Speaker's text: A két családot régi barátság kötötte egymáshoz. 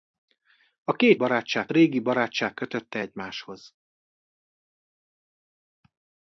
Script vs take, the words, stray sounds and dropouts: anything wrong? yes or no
yes